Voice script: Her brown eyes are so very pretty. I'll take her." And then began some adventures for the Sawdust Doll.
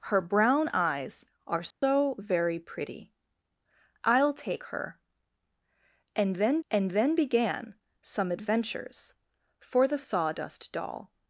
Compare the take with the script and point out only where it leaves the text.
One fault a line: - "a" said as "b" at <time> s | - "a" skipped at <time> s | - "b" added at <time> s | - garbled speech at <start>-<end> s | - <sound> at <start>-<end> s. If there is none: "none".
- dropout at 1.7-1.8 s
- "and then" added at 6.7 s